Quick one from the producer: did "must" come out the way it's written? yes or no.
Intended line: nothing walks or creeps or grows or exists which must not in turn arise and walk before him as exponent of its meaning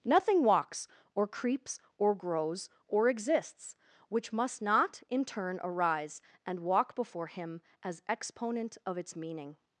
yes